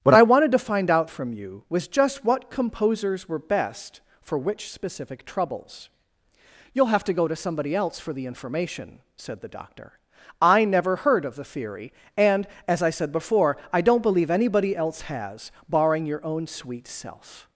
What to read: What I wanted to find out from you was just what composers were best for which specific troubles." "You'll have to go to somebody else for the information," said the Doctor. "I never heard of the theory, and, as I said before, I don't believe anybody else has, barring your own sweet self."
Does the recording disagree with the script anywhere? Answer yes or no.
no